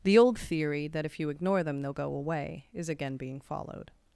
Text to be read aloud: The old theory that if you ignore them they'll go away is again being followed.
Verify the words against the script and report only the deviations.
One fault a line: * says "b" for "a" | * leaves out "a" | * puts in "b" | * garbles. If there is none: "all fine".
all fine